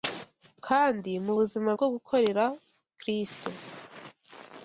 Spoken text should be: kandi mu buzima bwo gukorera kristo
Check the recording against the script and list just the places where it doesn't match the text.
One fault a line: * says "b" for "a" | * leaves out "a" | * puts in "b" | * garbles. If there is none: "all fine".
all fine